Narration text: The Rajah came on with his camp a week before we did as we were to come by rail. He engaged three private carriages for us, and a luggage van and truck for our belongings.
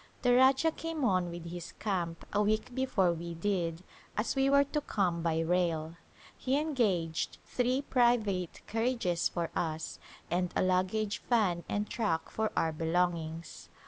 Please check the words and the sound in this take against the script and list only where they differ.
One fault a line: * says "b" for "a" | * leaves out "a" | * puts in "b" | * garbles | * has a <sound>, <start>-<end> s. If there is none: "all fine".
all fine